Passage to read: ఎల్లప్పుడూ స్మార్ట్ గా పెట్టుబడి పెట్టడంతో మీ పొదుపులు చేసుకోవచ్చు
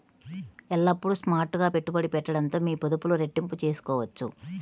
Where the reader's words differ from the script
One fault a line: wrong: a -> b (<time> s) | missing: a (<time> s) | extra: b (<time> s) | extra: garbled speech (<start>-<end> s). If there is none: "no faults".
extra: రెట్టింపు (3.2 s)